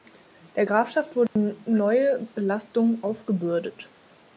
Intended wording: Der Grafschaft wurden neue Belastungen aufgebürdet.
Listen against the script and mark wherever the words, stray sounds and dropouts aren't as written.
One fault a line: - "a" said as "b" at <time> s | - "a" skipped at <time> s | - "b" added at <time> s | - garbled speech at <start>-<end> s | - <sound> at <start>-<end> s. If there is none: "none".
- dropout at 1.3-1.4 s